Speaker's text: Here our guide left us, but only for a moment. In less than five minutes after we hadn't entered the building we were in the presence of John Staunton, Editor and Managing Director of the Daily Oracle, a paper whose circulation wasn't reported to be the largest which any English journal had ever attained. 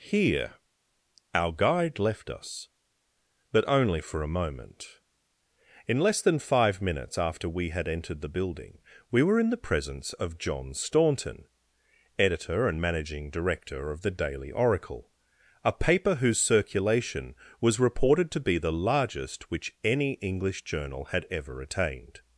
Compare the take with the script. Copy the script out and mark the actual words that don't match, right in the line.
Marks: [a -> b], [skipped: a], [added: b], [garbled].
Here our guide left us, but only for a moment. In less than five minutes after we [hadn't -> had] entered the building we were in the presence of John Staunton, Editor and Managing Director of the Daily Oracle, a paper whose circulation [wasn't -> was] reported to be the largest which any English journal had ever attained.